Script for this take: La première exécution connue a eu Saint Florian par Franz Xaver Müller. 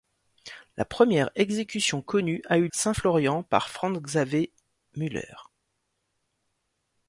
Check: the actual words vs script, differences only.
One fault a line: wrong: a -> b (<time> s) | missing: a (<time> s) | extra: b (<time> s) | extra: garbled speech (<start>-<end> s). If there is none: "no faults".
no faults